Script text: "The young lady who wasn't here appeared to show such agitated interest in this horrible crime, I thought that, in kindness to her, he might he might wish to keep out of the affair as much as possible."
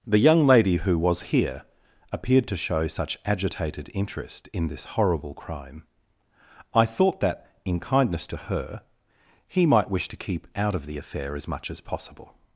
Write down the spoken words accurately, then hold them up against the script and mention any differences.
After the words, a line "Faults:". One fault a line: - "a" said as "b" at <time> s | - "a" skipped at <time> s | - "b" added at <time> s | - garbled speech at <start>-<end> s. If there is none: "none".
"The young lady who was here appeared to show such agitated interest in this horrible crime, I thought that, in kindness to her, he might wish to keep out of the affair as much as possible."
Faults:
- "wasn't" said as "was" at 1.0 s
- "he might" skipped at 9.9 s